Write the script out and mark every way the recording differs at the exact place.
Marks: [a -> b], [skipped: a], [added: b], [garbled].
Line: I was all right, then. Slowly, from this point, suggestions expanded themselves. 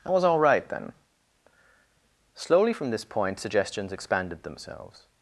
I was all right, then. Slowly, from this point, suggestions expanded themselves.